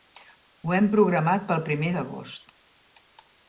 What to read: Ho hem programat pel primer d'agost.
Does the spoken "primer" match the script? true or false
true